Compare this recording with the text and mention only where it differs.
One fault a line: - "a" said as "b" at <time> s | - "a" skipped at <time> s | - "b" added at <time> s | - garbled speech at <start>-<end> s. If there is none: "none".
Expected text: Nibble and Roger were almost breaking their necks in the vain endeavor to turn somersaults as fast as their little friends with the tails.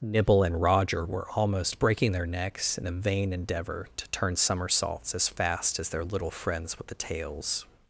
none